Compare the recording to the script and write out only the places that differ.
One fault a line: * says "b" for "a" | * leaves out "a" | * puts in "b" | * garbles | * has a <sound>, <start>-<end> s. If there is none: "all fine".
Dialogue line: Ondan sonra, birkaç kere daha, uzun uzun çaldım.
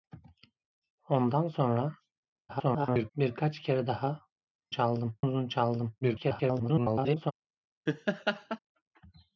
* garbles
* says "çaldım" for "uzun"
* garbles
* has a laugh, 7.9-8.6 s